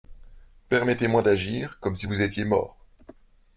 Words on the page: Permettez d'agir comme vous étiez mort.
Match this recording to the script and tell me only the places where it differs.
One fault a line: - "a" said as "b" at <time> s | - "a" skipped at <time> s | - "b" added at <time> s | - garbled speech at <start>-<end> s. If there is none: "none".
- "moi" added at 1.1 s
- "si" added at 1.9 s